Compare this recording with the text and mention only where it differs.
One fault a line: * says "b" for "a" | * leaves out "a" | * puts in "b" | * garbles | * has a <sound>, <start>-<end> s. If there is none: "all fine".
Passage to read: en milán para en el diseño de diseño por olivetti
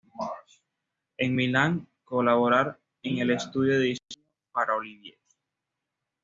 * says "colaborar" for "para"
* says "estudio" for "diseño"
* says "para" for "por"